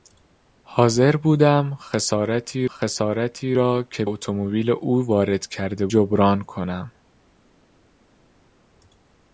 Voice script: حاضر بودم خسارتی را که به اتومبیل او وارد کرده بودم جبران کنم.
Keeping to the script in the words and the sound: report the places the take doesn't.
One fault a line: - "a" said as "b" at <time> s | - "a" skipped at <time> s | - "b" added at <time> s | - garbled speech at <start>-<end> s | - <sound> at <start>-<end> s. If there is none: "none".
- "خسارتی" added at 2.6 s
- "به" skipped at 4.0 s
- "بودم" skipped at 5.9 s